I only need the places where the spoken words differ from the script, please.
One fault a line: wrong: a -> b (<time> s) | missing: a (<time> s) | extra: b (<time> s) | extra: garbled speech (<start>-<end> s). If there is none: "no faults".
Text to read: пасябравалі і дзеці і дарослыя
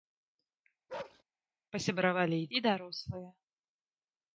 missing: дзеці (2.5 s)